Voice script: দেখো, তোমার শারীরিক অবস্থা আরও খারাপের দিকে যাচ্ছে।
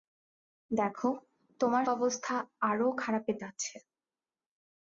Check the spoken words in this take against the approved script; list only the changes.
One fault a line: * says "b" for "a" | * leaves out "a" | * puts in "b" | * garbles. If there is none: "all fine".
* leaves out "শারীরিক"
* leaves out "দিকে"